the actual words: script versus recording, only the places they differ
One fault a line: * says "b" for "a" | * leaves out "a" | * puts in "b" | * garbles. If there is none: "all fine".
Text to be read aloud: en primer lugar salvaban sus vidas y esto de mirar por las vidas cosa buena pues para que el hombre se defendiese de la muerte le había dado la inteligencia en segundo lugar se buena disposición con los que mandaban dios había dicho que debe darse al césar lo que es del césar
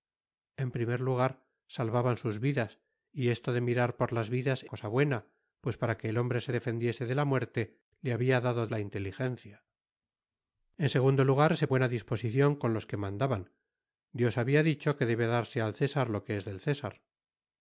all fine